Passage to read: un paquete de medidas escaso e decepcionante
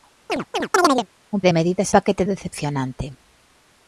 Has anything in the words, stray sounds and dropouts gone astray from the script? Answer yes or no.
yes